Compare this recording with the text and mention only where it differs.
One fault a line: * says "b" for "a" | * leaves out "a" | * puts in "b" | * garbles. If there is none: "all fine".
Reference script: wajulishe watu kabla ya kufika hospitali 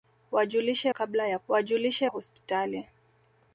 * leaves out "watu"
* says "wajulishe" for "kufika"